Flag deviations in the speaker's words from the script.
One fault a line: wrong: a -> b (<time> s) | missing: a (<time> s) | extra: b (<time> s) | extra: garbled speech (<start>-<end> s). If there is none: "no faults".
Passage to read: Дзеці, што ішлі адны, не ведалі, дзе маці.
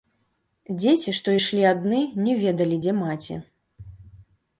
no faults